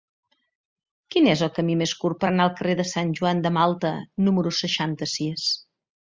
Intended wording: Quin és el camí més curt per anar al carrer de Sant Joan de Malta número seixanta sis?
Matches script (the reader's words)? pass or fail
pass